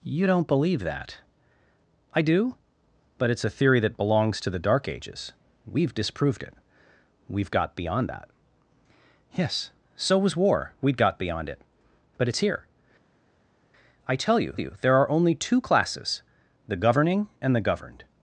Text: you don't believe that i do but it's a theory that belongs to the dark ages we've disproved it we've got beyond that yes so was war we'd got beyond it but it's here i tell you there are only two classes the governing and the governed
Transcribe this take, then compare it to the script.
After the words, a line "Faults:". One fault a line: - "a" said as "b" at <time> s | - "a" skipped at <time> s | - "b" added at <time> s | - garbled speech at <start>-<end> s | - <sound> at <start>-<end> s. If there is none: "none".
you don't believe that i do but it's a theory that belongs to the dark ages we've disproved it we've got beyond that yes so was war we'd got beyond it but it's here i tell you you there are only two classes the governing and the governed
Faults:
- "you" added at 14.6 s